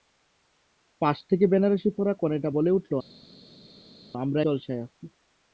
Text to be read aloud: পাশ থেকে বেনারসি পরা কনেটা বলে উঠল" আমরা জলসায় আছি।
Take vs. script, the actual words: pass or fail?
pass